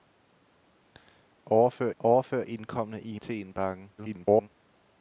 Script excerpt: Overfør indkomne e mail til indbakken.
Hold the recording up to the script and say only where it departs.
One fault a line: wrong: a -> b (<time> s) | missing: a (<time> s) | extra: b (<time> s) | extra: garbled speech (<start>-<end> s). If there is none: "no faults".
extra: overfør (2.0 s)
missing: mail (3.2 s)
extra: garbled speech (4.0-4.5 s)